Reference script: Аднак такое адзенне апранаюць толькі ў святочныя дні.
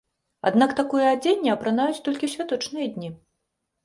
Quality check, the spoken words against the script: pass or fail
pass